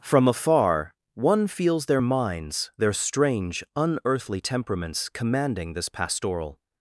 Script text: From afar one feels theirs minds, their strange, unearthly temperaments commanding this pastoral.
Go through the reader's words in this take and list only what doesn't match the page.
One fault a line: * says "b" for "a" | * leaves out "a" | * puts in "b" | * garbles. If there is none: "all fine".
* says "their" for "theirs"